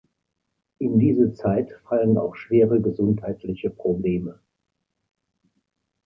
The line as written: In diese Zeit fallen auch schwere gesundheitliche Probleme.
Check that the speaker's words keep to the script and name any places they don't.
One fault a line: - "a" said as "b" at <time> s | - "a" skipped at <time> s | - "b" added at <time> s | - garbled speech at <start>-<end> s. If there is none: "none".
none